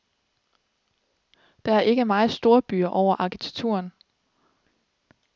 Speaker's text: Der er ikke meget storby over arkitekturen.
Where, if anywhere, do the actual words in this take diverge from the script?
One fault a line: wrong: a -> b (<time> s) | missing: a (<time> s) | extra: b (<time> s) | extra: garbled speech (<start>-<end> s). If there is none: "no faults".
no faults